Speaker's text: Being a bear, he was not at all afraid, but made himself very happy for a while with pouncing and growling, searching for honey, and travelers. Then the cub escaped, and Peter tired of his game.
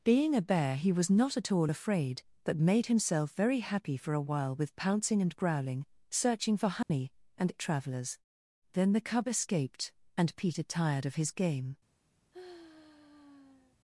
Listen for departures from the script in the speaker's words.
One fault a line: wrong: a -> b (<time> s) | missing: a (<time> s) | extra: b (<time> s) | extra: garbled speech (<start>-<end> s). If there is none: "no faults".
no faults